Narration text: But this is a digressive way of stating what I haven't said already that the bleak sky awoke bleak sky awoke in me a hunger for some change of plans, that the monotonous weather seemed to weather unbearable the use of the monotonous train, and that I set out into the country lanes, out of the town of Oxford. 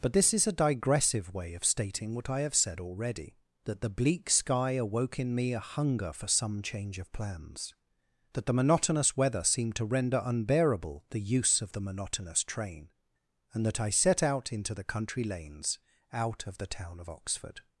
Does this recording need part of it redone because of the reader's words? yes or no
yes